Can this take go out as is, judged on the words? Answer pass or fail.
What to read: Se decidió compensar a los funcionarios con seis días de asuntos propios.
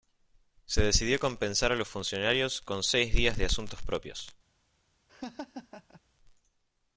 pass